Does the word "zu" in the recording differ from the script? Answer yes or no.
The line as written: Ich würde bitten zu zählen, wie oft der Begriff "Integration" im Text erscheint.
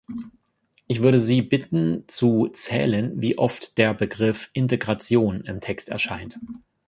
no